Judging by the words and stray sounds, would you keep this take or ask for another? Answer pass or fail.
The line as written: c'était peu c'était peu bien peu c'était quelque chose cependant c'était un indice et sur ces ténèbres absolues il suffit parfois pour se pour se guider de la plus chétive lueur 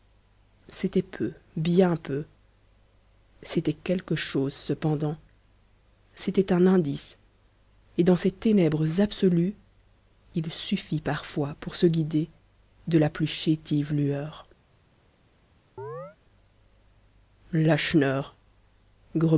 fail